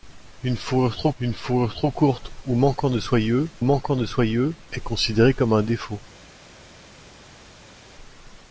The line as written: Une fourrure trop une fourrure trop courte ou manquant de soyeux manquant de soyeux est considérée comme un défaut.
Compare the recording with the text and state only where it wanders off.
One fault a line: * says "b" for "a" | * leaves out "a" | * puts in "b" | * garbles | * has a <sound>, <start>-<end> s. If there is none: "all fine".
all fine